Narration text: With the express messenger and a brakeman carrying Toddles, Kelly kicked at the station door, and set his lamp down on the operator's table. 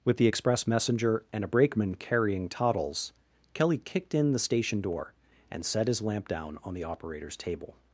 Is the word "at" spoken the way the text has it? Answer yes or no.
no